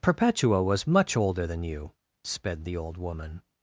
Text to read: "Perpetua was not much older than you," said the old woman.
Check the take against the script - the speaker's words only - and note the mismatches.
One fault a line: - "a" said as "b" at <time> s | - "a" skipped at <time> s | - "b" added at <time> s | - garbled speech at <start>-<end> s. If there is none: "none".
- "not" skipped at 0.9 s
- "said" said as "sped" at 2.2 s